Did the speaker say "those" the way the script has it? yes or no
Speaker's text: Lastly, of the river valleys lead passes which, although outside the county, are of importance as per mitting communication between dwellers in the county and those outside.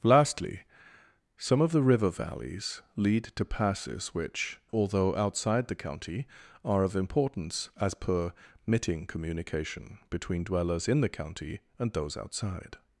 yes